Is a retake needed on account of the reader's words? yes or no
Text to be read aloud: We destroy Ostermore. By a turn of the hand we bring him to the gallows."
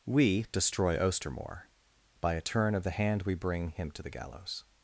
no